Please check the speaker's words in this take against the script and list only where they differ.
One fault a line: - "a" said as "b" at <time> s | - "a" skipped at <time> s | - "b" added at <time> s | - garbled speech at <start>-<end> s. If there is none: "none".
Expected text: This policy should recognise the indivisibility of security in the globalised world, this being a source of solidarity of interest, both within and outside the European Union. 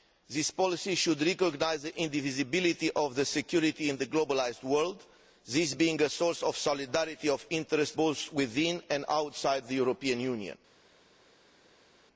none